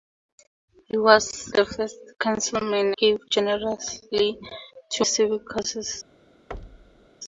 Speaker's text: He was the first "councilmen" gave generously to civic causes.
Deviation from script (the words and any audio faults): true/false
true